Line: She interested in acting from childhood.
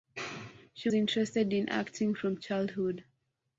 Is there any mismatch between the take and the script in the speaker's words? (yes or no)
no